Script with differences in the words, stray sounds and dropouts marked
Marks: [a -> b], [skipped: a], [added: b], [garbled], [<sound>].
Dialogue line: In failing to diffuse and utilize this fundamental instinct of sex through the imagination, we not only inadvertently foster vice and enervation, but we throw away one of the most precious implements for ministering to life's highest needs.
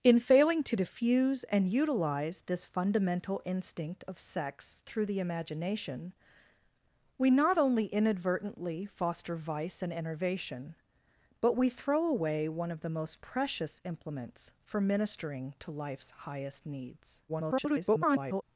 In failing to diffuse and utilize this fundamental instinct of sex through the imagination, we not only inadvertently foster vice and enervation, but we throw away one of the most precious implements for ministering to life's highest needs. [garbled]